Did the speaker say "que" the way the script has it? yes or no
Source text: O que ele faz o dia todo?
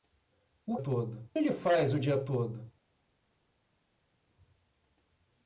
no